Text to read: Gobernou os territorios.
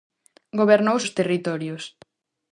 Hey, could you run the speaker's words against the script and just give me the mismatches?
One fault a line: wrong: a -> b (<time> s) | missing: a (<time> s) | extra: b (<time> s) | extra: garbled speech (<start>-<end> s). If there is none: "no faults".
no faults